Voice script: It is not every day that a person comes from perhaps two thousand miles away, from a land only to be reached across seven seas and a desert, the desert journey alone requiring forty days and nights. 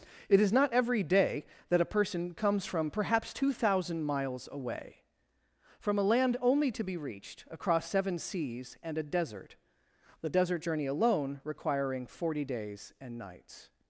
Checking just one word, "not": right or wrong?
right